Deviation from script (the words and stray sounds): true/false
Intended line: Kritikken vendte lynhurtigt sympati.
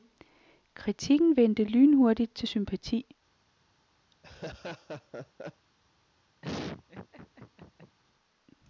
true